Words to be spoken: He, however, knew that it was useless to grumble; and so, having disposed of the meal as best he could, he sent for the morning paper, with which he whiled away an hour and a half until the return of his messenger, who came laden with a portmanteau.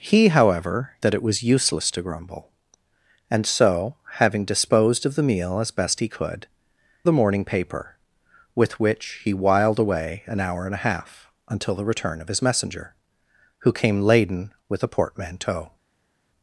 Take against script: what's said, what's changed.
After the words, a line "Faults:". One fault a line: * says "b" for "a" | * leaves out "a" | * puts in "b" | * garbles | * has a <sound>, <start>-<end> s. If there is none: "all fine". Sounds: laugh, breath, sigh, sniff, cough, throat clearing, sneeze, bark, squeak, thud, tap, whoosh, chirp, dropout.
He, however, that it was useless to grumble; and so, having disposed of the meal as best he could, the morning paper, with which he whiled away an hour and a half until the return of his messenger, who came laden with a portmanteau.
Faults:
* leaves out "knew"
* leaves out "he sent for"